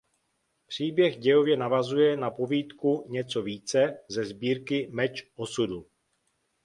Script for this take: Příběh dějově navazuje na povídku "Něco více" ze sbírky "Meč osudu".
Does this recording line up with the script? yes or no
yes